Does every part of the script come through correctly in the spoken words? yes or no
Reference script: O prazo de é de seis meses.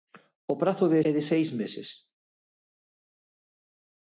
yes